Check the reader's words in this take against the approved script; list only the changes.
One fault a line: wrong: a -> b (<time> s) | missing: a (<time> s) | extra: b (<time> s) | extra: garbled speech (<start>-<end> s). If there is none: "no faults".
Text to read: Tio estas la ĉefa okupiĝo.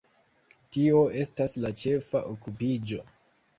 no faults